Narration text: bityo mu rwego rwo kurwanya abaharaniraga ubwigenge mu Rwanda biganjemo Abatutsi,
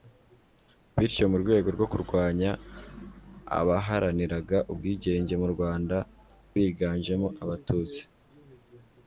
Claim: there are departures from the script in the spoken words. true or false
false